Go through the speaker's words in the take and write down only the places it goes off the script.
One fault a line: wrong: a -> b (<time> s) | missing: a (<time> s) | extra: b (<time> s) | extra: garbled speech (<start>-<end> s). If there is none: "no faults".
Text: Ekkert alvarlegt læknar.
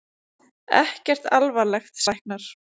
no faults